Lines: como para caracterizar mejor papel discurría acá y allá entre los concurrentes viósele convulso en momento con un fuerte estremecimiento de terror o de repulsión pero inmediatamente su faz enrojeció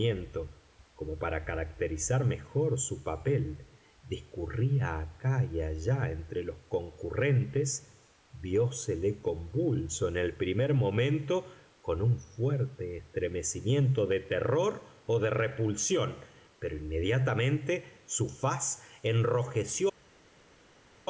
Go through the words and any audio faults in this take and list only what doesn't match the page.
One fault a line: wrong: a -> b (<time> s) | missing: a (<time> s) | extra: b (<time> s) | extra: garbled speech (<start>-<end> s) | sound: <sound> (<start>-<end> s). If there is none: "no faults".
extra: su (2.8 s)
extra: el primer (10.2 s)